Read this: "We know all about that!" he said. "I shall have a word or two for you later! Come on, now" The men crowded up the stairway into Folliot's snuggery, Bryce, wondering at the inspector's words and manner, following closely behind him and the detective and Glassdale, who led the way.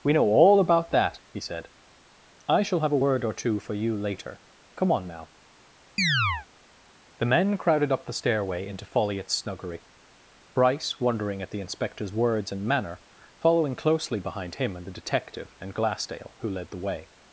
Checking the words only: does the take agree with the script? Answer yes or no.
yes